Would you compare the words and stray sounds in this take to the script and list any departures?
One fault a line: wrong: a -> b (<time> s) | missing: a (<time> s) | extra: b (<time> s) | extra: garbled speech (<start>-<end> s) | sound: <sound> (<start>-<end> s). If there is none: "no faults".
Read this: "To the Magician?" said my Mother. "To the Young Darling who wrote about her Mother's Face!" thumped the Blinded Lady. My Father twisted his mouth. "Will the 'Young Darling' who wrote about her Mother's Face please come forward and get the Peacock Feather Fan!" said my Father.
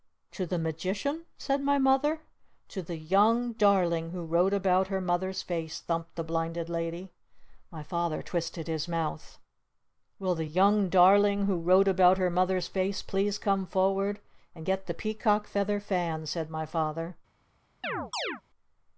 sound: chirp (17.8-18.4 s)